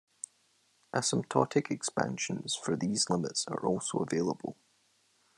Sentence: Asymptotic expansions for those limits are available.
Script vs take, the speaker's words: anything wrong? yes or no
yes